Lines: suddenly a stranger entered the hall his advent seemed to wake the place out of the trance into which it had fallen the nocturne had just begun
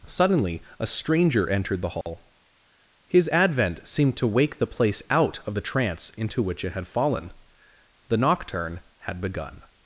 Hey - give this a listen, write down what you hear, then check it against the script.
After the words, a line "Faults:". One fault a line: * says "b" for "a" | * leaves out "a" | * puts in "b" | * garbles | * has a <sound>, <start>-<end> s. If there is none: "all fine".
suddenly a stranger entered the hall his advent seemed to wake the place out of the trance into which it had fallen the nocturne had begun
Faults:
* has a dropout, 2.0-2.1 s
* leaves out "just"